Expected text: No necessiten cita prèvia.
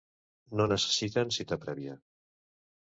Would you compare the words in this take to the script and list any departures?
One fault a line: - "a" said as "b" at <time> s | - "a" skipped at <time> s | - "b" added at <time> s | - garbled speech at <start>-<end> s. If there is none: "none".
none